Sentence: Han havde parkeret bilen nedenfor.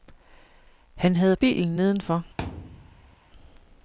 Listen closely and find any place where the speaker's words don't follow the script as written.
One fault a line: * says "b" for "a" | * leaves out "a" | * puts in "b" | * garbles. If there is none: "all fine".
* leaves out "parkeret"